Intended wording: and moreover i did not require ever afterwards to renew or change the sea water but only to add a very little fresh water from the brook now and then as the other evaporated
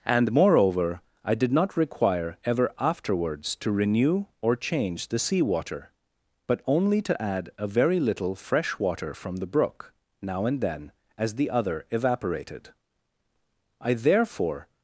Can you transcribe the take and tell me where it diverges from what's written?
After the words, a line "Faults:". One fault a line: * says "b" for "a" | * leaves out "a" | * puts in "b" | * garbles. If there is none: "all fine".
and moreover i did not require ever afterwards to renew or change the sea water but only to add a very little fresh water from the brook now and then as the other evaporated i therefore
Faults:
* puts in "i therefore"